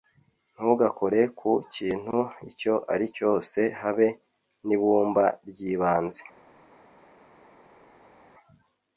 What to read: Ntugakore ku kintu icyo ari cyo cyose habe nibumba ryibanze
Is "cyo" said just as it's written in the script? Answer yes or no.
no